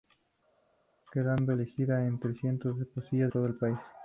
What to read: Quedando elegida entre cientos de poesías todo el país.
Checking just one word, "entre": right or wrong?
right